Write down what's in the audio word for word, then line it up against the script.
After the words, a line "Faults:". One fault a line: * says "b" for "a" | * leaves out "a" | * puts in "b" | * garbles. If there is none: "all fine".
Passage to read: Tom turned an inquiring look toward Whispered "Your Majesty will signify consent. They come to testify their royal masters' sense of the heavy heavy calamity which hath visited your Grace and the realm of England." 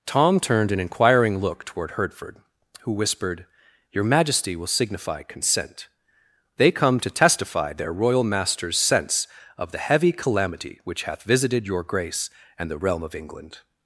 Tom turned an inquiring look toward Hertford, who whispered "Your Majesty will signify consent. They come to testify their royal masters' sense of the heavy calamity which hath visited your Grace and the realm of England."
Faults:
* puts in "Hertford who"
* leaves out "heavy"